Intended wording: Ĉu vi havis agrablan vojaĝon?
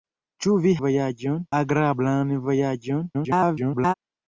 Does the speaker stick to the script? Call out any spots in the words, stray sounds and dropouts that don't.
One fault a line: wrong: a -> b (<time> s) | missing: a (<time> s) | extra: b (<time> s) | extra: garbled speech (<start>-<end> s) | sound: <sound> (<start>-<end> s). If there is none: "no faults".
wrong: havis -> vojaĝon (0.9 s)
extra: garbled speech (3.1-3.9 s)